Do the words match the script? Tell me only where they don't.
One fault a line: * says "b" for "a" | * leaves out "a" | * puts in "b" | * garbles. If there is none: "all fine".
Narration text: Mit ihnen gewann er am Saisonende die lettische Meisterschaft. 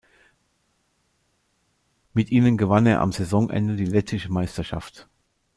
all fine